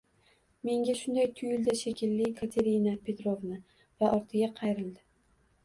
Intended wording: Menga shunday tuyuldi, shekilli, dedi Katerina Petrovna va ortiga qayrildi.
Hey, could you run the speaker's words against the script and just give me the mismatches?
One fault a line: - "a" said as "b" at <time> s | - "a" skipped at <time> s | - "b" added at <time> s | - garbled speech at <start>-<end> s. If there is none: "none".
- "dedi" skipped at 2.3 s